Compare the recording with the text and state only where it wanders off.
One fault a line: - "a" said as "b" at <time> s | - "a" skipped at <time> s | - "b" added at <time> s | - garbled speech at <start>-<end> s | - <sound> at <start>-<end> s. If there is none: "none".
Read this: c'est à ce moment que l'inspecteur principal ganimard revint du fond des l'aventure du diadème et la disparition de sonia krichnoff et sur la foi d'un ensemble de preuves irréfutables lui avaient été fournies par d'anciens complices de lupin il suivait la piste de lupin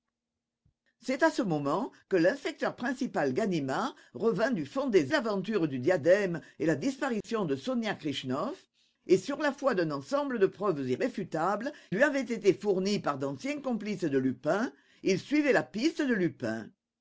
- dropout at 7.2-7.2 s